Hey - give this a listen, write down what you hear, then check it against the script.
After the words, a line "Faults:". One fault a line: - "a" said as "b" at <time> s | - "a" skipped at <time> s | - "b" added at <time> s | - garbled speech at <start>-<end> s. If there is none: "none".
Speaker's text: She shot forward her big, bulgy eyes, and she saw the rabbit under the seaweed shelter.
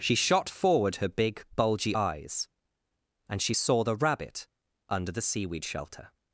She shot forward her big, bulgy eyes, and she saw the rabbit under the seaweed shelter.
Faults:
none